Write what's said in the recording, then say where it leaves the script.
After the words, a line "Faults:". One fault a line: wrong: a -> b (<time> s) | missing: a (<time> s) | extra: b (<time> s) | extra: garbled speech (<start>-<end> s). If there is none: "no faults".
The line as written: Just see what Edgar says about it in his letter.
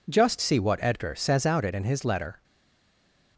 Just see what Edgar says out it in his letter.
Faults:
wrong: about -> out (1.4 s)